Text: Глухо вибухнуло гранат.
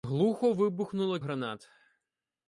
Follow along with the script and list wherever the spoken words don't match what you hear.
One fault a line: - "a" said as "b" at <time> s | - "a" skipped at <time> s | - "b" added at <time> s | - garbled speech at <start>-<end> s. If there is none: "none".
none